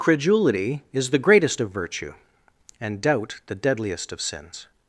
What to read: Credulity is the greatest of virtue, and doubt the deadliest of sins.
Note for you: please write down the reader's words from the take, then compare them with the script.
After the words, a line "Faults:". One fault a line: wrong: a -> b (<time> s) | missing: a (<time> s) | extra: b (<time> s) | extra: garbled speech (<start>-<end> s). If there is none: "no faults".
Credulity is the greatest of virtue, and doubt the deadliest of sins.
Faults:
no faults